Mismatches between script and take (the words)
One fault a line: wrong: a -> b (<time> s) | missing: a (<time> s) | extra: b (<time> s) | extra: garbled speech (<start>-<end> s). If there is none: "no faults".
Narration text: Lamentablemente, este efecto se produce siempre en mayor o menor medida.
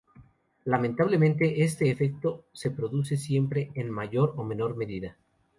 no faults